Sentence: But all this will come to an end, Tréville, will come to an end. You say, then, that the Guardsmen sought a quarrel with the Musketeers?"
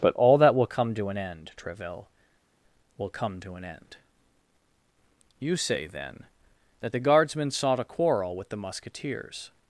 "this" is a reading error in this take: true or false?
true